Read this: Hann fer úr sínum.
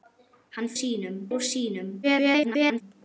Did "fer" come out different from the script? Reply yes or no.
yes